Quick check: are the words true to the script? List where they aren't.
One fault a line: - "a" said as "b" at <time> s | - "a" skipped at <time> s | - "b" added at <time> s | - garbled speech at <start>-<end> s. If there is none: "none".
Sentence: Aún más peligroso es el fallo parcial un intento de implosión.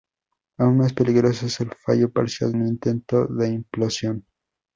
none